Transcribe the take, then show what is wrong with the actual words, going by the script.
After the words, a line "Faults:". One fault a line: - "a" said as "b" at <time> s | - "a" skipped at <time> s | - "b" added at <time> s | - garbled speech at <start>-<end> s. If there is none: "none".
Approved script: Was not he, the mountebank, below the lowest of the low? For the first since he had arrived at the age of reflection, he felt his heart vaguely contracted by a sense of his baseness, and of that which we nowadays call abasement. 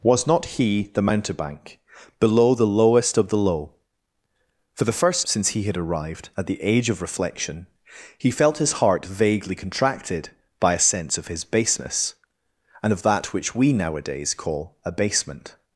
Was not he, the mountebank, below the lowest of the low? For the first since he had arrived at the age of reflection, he felt his heart vaguely contracted by a sense of his baseness, and of that which we nowadays call abasement.
Faults:
none